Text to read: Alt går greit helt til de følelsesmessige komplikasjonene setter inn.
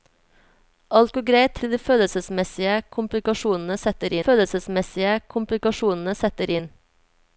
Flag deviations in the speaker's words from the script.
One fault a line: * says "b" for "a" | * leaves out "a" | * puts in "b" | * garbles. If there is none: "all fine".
* leaves out "helt"
* puts in "følelsesmessige komplikasjonene setter"